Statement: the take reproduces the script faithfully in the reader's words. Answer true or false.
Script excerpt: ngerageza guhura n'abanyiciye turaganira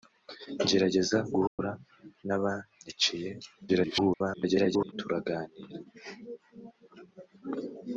false